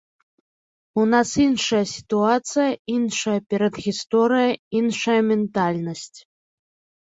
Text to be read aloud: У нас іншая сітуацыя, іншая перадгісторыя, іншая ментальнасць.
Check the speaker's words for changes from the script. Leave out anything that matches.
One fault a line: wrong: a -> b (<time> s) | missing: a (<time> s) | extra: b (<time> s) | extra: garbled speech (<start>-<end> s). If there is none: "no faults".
no faults